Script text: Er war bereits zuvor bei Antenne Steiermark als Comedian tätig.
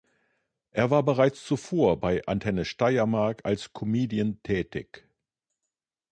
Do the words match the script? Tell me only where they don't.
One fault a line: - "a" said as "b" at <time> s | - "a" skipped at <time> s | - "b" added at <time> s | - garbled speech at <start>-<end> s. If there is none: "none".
none